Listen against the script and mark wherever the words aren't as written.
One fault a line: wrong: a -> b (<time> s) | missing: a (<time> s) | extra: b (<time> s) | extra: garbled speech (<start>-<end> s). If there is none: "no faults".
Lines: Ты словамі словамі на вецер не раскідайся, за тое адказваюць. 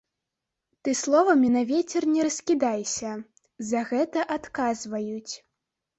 missing: словамі (1.5 s)
wrong: тое -> гэта (3.9 s)